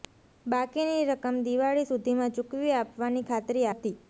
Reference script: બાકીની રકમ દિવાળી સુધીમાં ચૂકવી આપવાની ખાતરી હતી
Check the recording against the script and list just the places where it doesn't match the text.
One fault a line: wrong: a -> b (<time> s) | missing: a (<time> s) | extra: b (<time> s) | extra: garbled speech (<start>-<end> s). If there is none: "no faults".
no faults